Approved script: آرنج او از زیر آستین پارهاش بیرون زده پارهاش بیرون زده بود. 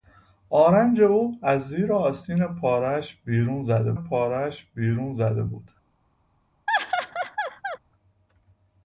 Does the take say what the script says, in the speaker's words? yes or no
yes